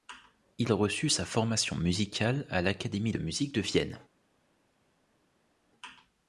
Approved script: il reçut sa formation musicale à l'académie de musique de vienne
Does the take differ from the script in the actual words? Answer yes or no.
no